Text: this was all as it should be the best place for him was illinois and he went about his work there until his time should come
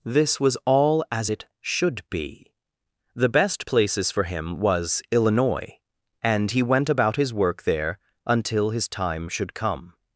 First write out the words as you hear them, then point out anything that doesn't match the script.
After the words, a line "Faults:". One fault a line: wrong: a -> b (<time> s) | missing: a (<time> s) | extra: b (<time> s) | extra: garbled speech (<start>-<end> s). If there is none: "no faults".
this was all as it should be the best places for him was illinois and he went about his work there until his time should come
Faults:
wrong: place -> places (3.6 s)